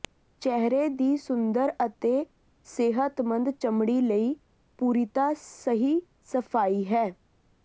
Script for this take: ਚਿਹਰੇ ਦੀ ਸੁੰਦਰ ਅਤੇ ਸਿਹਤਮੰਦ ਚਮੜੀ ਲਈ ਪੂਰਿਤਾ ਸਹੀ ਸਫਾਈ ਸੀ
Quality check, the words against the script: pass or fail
fail